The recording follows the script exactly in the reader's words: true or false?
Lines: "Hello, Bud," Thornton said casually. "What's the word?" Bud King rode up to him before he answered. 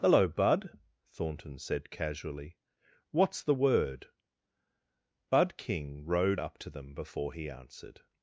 false